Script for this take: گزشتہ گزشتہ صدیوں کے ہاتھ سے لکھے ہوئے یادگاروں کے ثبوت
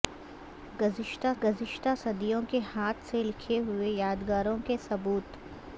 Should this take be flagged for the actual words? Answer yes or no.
no